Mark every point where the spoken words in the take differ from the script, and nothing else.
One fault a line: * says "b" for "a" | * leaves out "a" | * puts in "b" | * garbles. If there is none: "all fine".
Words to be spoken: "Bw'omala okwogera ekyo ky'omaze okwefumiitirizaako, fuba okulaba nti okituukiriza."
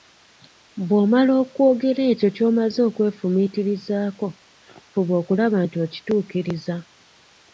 all fine